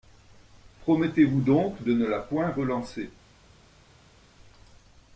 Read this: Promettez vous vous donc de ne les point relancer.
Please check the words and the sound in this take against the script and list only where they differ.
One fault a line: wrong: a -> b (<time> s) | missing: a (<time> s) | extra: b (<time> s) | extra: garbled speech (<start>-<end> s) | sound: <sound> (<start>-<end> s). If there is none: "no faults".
missing: vous (1.4 s)
wrong: les -> la (2.0 s)